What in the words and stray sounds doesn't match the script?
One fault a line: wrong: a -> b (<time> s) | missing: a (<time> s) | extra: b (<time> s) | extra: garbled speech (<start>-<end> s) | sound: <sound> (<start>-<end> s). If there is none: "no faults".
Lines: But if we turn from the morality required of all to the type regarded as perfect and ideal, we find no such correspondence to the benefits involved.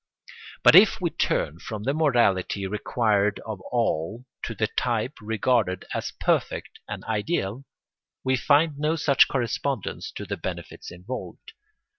no faults